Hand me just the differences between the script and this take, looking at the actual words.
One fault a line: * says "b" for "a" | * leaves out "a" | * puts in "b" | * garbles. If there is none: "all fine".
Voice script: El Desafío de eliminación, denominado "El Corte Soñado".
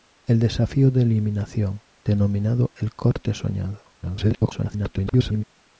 * garbles